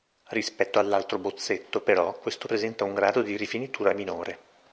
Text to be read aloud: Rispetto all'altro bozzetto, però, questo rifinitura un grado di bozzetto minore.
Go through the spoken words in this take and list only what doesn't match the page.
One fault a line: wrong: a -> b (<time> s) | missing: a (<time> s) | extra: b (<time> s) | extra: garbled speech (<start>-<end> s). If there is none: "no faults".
wrong: rifinitura -> presenta (2.4 s)
wrong: bozzetto -> rifinitura (3.4 s)